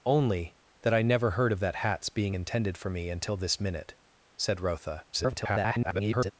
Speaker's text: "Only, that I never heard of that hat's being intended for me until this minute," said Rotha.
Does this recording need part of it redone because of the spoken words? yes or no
yes